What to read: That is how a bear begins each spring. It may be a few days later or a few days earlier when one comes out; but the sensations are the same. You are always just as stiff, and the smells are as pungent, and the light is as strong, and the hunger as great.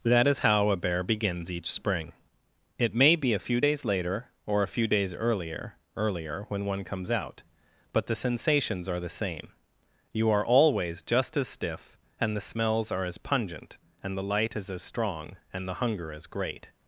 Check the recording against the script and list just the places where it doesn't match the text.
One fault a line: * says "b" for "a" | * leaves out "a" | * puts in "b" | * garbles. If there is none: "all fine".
* puts in "earlier"